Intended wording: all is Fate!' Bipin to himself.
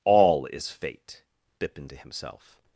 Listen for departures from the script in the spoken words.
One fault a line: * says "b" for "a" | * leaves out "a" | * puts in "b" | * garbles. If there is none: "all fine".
all fine